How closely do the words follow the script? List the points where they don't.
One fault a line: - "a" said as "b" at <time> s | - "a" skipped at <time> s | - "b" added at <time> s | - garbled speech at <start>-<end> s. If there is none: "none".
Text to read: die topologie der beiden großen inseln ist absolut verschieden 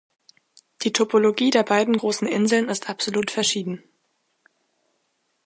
none